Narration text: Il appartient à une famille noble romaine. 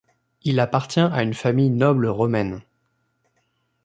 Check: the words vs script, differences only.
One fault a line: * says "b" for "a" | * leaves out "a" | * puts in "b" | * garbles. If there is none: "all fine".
all fine